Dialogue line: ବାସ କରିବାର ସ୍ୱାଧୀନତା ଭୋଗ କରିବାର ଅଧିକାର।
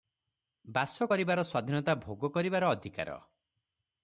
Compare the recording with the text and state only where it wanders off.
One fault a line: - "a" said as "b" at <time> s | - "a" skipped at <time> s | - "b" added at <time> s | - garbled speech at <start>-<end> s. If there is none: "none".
none